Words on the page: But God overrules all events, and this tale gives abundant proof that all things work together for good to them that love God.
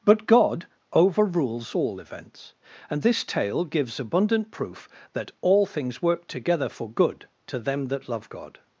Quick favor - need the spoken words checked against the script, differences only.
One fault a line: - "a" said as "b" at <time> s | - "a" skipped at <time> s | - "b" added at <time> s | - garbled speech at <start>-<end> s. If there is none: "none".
none